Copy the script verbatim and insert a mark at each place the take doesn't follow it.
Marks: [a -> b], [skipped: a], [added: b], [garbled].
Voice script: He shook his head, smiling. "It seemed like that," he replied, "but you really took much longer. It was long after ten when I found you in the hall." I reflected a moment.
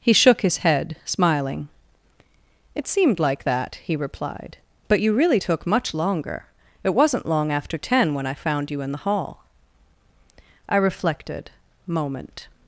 He shook his head, smiling. "It seemed like that," he replied, "but you really took much longer. It [was -> wasn't] long after ten when I found you in the hall." I reflected [skipped: a] moment.